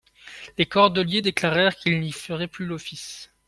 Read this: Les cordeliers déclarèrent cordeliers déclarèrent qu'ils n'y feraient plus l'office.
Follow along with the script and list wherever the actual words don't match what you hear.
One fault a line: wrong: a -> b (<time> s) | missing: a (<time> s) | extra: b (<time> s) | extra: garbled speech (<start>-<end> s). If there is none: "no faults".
missing: cordeliers déclarèrent (1.7 s)